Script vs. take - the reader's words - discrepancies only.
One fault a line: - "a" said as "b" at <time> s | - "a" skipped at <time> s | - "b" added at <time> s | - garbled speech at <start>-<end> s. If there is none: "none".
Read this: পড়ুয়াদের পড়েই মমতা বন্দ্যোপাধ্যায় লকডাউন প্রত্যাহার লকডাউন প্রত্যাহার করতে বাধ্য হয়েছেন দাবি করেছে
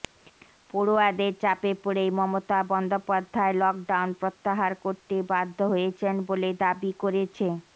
- "চাপে" added at 1.4 s
- "লকডাউন প্রত্যাহার" skipped at 4.7 s
- "বলে" added at 6.3 s